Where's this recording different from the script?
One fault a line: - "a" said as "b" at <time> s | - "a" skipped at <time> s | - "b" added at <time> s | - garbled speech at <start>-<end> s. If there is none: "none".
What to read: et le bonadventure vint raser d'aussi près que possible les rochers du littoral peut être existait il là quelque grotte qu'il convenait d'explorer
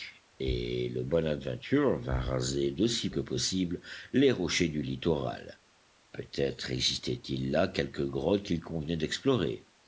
- "près" skipped at 3.1 s